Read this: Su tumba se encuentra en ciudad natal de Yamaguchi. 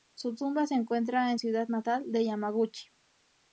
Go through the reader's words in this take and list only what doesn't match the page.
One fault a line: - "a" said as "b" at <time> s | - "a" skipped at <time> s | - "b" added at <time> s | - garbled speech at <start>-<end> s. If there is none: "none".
none